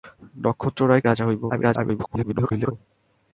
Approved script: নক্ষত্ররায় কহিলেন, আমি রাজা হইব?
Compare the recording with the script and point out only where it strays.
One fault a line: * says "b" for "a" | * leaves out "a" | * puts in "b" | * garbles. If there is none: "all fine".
* leaves out "কহিলেন আমি"
* garbles